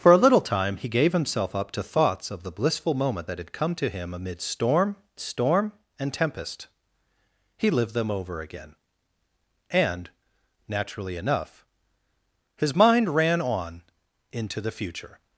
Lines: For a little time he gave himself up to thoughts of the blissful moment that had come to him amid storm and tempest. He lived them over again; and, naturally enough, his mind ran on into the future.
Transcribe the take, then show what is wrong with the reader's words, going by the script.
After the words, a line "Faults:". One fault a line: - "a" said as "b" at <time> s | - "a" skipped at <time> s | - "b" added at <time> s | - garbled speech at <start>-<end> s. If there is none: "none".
For a little time he gave himself up to thoughts of the blissful moment that had come to him amid storm storm and tempest. He lived them over again; and, naturally enough, his mind ran on into the future.
Faults:
- "storm" added at 5.2 s